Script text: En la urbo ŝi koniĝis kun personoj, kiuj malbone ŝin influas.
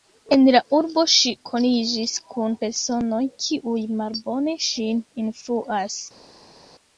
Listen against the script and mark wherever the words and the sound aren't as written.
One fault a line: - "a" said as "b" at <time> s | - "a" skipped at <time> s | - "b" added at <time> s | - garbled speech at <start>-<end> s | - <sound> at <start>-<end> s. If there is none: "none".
none